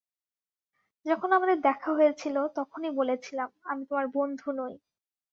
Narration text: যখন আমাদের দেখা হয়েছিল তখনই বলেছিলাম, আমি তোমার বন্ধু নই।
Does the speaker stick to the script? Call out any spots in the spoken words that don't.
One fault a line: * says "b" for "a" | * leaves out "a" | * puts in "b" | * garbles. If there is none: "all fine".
all fine